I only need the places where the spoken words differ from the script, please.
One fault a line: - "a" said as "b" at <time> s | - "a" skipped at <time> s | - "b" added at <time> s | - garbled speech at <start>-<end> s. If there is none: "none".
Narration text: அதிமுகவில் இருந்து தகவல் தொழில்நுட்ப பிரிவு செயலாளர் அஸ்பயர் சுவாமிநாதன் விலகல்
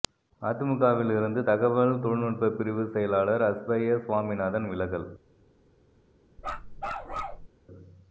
none